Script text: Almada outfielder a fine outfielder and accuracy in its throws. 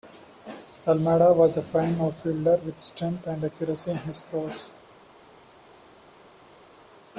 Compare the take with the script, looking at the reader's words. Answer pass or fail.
fail